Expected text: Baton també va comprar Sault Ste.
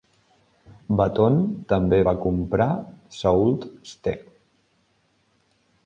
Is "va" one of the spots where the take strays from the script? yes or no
no